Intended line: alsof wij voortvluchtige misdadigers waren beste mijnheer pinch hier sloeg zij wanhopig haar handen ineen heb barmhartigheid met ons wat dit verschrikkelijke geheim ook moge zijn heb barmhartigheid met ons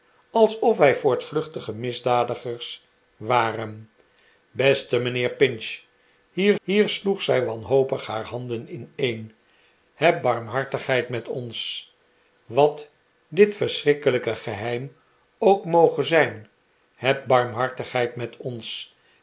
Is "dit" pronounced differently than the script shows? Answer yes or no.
no